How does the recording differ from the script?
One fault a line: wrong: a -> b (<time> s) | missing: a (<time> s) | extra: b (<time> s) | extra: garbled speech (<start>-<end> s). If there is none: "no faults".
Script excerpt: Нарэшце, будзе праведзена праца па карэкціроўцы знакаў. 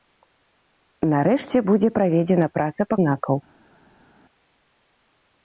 missing: карэкціроўцы (3.0 s)